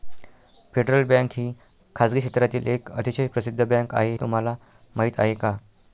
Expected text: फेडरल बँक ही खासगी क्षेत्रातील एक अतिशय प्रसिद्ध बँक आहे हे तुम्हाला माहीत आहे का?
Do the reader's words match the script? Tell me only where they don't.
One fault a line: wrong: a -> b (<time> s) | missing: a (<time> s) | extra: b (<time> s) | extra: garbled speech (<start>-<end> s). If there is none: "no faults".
missing: हे (4.2 s)